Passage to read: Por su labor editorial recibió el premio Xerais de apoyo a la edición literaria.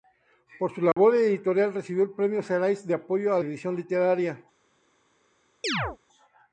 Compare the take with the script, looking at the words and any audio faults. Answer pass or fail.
fail